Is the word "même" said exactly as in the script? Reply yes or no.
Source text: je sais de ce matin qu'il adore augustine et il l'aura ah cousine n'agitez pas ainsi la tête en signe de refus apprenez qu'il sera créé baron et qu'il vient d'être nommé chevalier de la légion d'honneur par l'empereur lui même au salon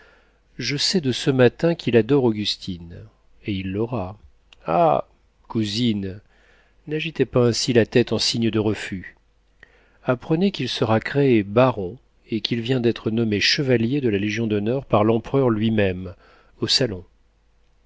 yes